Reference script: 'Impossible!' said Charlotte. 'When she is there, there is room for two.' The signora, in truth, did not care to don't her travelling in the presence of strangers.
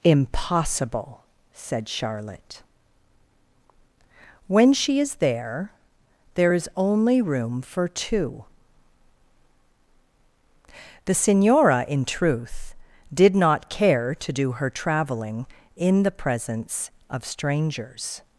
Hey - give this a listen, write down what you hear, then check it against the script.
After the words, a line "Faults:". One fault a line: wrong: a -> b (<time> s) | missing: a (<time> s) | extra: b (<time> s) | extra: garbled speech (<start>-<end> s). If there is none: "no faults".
'Impossible!' said Charlotte. 'When she is there, there is only room for two.' The signora, in truth, did not care to do her travelling in the presence of strangers.
Faults:
extra: only (6.8 s)
wrong: don't -> do (14.3 s)